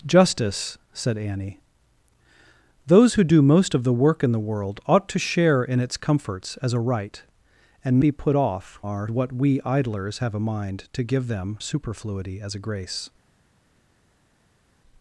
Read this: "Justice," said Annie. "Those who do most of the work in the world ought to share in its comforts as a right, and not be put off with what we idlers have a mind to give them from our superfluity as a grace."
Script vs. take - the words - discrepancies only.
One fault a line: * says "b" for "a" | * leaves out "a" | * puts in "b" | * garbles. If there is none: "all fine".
* leaves out "not"
* says "our" for "with"
* leaves out "from our"